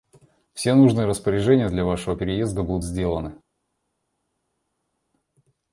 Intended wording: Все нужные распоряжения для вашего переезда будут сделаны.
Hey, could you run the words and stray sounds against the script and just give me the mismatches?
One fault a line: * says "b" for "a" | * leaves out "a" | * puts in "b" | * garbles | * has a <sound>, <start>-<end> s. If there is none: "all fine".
all fine